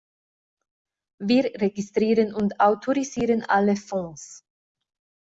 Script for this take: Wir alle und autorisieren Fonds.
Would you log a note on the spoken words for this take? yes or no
yes